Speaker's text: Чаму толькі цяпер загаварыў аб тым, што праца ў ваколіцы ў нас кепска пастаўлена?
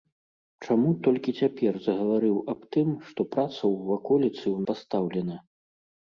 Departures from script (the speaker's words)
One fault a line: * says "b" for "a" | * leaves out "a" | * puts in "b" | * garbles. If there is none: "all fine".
* leaves out "нас кепска"